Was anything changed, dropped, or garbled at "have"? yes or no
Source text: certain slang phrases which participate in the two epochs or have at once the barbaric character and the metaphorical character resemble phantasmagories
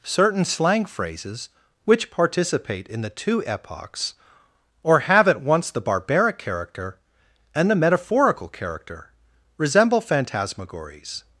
no